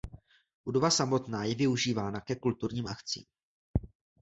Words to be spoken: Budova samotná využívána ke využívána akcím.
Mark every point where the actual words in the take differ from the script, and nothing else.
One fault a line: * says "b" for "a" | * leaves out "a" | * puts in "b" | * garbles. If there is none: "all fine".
* puts in "je"
* says "kulturním" for "využívána"